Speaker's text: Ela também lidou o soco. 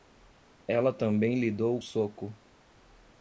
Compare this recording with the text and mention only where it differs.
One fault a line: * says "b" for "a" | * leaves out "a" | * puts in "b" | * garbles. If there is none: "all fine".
all fine